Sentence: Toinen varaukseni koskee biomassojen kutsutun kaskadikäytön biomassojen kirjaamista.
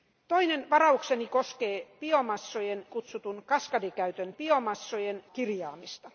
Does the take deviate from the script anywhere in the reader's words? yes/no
no